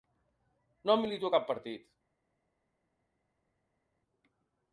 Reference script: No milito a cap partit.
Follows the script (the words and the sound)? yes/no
yes